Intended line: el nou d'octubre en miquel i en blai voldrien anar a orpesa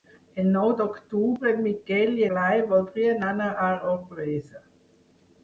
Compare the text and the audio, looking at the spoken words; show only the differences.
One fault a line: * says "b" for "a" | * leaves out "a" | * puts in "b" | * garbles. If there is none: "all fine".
* leaves out "en"